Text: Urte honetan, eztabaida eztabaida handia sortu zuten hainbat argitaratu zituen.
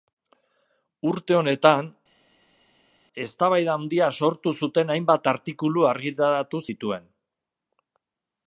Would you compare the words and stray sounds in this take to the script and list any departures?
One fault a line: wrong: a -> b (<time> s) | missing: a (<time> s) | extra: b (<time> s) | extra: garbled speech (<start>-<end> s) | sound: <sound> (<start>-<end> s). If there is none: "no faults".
missing: eztabaida (3.7 s)
extra: artikulu (5.3 s)